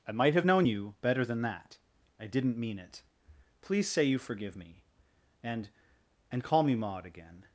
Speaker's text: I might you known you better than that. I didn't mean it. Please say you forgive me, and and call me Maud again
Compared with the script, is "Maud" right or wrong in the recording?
right